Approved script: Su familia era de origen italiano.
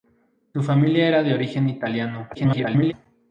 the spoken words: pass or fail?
fail